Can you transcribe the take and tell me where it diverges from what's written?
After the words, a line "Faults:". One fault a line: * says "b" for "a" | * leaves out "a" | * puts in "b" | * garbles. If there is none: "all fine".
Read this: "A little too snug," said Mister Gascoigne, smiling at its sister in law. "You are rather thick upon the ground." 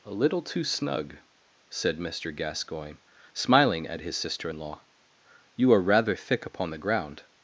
"A little too snug," said Mister Gascoigne, smiling at his sister in law. "You are rather thick upon the ground."
Faults:
* says "his" for "its"